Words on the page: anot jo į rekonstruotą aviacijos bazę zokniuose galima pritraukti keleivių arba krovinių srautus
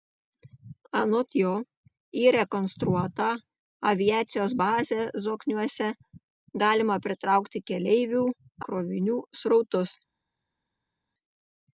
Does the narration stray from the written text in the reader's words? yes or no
yes